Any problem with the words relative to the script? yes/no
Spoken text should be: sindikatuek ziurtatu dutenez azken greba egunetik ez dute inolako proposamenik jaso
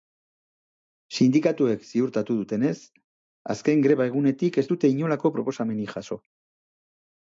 no